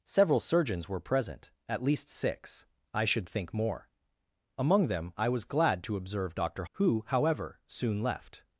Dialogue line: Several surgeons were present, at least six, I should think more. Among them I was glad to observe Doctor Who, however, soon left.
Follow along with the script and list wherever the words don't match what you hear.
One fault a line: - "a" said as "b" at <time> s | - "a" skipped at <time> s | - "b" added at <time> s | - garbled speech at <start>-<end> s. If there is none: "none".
none